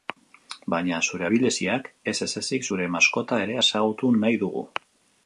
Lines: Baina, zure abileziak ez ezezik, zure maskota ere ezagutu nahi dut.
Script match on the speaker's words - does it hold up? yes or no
no